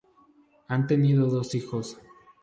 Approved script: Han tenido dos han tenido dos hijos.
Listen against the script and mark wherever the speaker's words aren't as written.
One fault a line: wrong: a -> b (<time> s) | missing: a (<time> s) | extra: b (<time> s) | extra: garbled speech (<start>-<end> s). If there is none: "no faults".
missing: han tenido dos (1.6 s)